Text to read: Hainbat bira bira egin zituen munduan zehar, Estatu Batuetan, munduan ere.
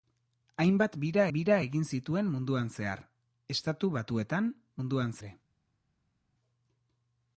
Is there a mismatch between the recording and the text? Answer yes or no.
no